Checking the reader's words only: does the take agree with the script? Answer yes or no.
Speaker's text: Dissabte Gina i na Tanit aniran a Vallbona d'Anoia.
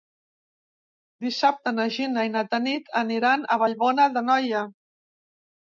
no